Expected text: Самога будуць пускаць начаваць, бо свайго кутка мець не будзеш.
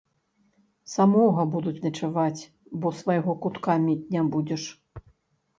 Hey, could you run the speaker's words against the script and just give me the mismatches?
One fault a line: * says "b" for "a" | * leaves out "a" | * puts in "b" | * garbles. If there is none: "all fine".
* leaves out "пускаць"